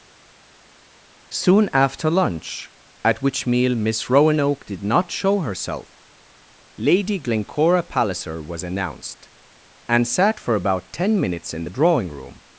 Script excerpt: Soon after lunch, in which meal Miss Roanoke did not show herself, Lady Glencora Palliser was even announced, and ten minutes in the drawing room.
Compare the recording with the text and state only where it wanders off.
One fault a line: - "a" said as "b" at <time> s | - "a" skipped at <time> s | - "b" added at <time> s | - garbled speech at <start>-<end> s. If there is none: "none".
- "in" said as "at" at 3.1 s
- "even" skipped at 8.6 s
- "sat for about" added at 10.1 s